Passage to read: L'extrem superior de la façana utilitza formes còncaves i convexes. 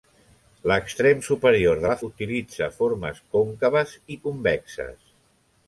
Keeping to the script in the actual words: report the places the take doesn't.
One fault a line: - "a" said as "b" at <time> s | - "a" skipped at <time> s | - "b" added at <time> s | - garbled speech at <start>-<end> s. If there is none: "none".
- "façana" skipped at 2.0 s